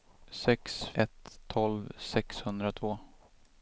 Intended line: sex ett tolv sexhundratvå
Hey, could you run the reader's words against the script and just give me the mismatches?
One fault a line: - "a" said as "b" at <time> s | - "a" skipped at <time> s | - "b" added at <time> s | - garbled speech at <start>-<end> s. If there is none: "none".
none